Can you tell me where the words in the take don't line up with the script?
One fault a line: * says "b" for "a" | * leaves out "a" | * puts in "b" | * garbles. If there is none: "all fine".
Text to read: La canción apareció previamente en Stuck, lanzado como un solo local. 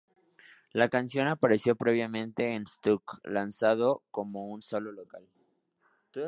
all fine